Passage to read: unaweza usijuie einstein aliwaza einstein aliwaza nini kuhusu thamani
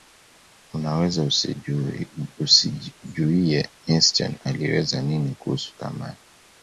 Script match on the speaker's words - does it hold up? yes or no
no